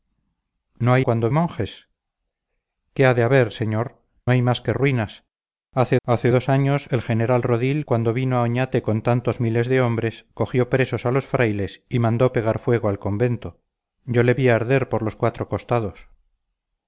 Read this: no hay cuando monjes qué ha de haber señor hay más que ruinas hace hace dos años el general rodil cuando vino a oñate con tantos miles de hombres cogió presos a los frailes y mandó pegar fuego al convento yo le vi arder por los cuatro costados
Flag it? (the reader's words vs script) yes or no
no